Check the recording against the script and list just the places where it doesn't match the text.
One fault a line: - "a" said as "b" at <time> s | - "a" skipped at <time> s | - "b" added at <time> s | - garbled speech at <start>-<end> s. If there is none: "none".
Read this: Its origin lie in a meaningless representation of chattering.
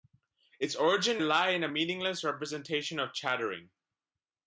none